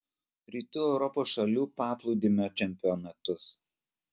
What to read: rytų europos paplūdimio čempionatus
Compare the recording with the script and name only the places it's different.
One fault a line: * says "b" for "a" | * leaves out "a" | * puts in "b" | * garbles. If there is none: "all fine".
* puts in "šalių"